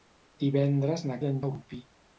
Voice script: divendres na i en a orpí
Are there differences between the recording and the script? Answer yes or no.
no